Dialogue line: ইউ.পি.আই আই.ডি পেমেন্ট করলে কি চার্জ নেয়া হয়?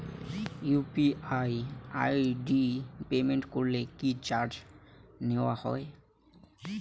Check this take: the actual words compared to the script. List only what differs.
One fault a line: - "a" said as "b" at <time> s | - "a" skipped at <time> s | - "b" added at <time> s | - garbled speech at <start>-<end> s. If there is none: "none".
none